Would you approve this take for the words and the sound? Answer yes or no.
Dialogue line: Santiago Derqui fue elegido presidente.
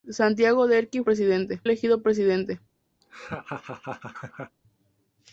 no